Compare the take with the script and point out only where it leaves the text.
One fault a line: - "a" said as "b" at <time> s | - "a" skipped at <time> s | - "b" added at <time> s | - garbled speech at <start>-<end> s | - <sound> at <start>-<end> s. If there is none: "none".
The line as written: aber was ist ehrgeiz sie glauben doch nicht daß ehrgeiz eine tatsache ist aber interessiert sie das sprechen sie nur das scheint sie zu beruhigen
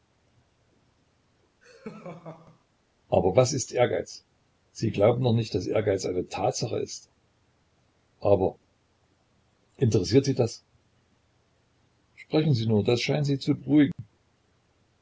- laugh at 1.6-2.6 s
- dropout at 13.9-14.0 s